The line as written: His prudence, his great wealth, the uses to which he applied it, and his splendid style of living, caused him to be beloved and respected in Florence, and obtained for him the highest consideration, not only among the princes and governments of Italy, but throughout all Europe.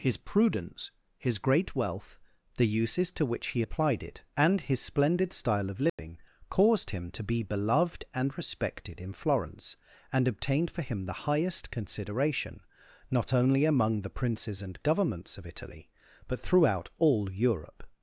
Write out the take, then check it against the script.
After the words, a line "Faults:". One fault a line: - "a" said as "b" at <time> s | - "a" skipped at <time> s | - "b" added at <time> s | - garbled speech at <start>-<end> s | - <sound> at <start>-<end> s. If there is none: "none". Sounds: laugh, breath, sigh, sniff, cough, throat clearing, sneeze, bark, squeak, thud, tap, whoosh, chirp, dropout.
His prudence, his great wealth, the uses to which he applied it, and his splendid style of living, caused him to be beloved and respected in Florence, and obtained for him the highest consideration, not only among the princes and governments of Italy, but throughout all Europe.
Faults:
- dropout at 5.9-6.0 s